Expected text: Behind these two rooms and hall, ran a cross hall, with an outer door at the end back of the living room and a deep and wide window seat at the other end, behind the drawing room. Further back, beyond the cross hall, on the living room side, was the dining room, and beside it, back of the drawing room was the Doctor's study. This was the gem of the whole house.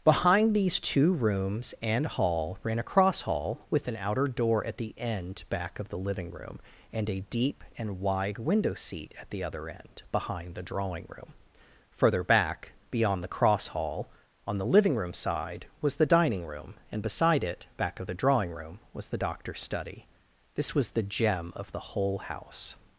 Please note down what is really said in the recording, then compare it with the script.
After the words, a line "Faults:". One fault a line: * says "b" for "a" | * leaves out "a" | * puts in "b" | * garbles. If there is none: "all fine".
Behind these two rooms and hall, ran a cross hall, with an outer door at the end back of the living room and a deep and wide window seat at the other end, behind the drawing room. Further back, beyond the cross hall, on the living room side, was the dining room, and beside it, back of the drawing room was the Doctor's study. This was the gem of the whole house.
Faults:
all fine